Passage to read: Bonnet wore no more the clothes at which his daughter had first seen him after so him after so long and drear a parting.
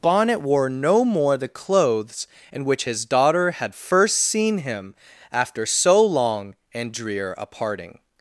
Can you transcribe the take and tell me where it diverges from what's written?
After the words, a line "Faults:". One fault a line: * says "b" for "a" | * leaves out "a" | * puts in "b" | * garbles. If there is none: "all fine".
Bonnet wore no more the clothes in which his daughter had first seen him after so long and drear a parting.
Faults:
* says "in" for "at"
* leaves out "him after so"